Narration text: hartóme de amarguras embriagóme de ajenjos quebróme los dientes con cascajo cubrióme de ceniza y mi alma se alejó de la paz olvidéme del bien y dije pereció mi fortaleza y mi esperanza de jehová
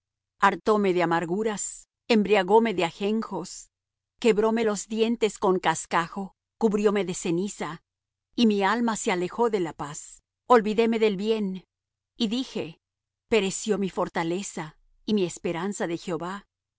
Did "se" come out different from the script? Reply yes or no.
no